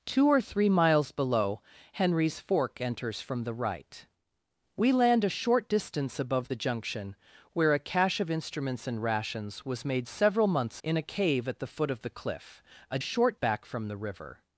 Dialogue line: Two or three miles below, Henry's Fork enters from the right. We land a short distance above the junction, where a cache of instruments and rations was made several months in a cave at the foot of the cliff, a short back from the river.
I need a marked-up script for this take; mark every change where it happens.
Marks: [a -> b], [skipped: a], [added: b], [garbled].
Two or three miles below, Henry's Fork enters from the right. We land a short distance above the junction, where a cache of instruments and rations was made several months in a cave at the foot of the cliff, a short back from the river.